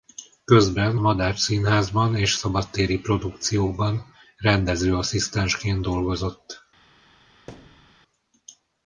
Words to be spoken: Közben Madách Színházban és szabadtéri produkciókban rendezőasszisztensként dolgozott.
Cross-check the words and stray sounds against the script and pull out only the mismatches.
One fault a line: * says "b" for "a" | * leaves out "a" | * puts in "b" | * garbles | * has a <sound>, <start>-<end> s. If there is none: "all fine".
* has a thud, 7.5-8.0 s